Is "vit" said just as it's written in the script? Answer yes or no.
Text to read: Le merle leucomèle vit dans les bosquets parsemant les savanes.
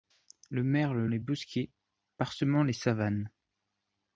no